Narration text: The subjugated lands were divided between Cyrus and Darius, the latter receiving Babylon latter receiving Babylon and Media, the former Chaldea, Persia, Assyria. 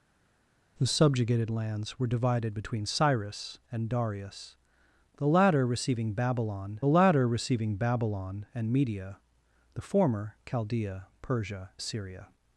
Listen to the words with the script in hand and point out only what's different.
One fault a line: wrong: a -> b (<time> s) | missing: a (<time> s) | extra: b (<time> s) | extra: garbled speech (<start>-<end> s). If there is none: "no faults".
no faults